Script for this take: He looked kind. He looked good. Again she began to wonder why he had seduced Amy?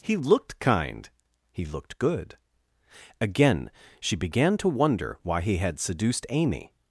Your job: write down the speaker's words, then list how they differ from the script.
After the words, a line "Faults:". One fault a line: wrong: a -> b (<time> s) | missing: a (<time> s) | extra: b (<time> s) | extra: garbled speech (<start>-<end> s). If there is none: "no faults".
He looked kind. He looked good. Again she began to wonder why he had seduced Amy?
Faults:
no faults